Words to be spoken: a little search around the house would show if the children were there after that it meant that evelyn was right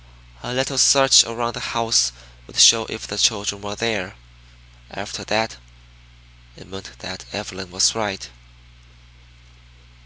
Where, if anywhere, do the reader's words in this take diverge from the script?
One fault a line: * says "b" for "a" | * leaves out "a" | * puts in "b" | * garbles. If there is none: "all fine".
all fine